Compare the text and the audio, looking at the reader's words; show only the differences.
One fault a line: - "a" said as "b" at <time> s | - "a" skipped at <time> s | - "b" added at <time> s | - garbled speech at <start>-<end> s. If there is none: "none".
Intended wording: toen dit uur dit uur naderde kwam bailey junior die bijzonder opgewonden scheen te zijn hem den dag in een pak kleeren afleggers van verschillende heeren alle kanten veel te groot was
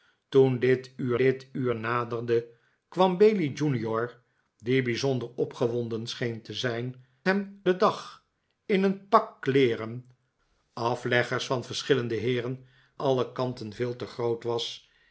none